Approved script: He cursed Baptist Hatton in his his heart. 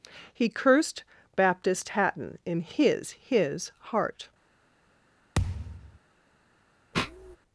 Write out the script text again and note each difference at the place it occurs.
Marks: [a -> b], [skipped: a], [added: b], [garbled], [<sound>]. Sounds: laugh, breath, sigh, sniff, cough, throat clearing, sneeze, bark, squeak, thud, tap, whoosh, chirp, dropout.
He cursed Baptist Hatton in his his heart. [thud] [sniff]